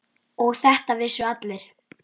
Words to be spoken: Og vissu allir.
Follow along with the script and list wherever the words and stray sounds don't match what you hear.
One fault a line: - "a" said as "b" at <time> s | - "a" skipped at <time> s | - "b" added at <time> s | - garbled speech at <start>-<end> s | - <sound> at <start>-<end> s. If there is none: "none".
- "þetta" added at 0.6 s